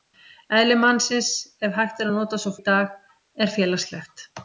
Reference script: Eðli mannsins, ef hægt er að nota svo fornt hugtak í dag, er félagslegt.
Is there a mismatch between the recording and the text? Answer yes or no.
yes